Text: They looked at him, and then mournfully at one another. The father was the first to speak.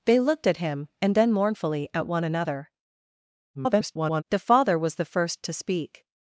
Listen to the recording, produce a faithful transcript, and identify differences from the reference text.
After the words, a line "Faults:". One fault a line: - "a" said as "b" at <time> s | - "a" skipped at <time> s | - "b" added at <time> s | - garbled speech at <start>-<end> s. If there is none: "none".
They looked at him, and then mournfully at one another. [garbled] The father was the first to speak.
Faults:
- garbled speech at 3.5-4.2 s